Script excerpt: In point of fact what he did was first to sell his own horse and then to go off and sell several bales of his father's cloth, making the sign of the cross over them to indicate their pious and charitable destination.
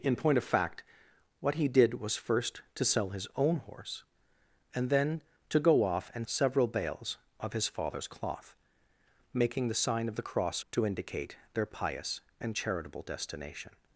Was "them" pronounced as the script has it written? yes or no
no